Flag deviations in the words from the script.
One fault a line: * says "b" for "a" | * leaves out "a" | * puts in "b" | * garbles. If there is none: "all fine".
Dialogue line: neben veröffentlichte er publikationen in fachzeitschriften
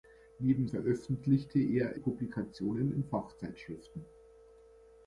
all fine